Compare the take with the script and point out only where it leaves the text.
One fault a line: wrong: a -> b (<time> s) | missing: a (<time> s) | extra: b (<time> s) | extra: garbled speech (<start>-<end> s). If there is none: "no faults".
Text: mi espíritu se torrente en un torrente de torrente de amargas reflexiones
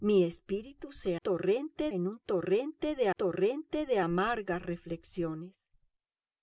no faults